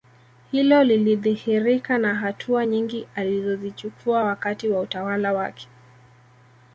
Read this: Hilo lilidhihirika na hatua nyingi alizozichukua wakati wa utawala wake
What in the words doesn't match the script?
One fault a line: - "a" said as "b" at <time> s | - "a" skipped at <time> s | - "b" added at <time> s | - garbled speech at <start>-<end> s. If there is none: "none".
none